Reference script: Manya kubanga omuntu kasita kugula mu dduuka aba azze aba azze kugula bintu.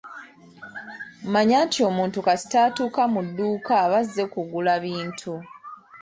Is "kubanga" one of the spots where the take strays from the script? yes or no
yes